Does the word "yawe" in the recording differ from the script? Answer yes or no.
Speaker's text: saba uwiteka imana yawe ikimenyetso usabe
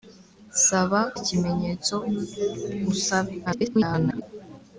yes